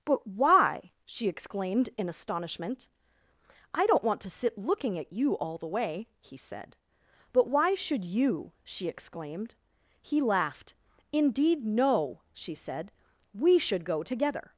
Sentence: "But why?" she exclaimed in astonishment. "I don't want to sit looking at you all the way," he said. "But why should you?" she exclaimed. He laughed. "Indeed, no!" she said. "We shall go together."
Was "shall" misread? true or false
true